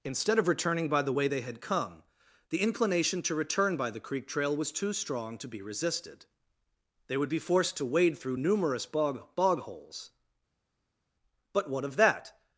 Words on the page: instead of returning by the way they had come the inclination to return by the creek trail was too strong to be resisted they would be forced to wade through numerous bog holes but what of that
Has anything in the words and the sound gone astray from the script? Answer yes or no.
yes